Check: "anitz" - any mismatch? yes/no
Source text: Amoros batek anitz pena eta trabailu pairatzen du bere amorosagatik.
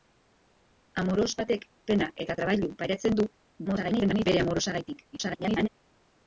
yes